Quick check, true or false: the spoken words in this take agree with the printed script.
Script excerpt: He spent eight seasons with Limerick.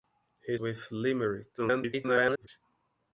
false